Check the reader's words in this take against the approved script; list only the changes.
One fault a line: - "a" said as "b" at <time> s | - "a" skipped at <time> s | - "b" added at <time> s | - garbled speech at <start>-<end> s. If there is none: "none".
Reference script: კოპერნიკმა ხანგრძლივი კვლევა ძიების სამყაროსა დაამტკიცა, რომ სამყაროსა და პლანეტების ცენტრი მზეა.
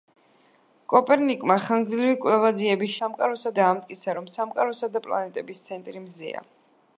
none